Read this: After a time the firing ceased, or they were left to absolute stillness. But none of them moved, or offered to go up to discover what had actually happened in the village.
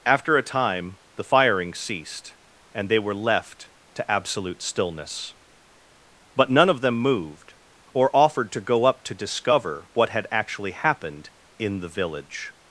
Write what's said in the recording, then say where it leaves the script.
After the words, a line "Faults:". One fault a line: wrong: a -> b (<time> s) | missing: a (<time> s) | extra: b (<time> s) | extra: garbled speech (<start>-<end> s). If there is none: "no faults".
After a time the firing ceased, and they were left to absolute stillness. But none of them moved, or offered to go up to discover what had actually happened in the village.
Faults:
wrong: or -> and (2.7 s)